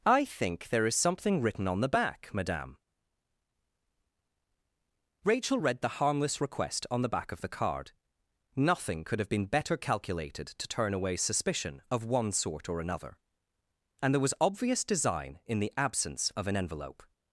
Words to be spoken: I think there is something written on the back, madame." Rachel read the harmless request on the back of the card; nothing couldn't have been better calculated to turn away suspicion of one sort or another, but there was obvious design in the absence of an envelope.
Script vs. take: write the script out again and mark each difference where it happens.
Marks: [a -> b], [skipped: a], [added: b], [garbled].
I think there is something written on the back, madame." Rachel read the harmless request on the back of the card; nothing [couldn't -> could] have been better calculated to turn away suspicion of one sort or another, [but -> and] there was obvious design in the absence of an envelope.